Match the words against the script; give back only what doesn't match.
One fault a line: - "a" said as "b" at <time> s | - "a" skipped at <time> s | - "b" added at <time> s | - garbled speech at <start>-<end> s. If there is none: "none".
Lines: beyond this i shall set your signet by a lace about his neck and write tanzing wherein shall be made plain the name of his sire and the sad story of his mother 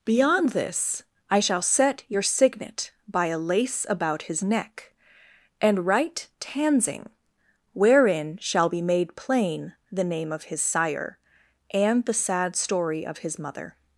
none